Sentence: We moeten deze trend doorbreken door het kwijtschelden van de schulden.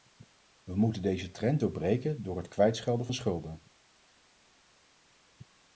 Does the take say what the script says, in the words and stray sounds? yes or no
no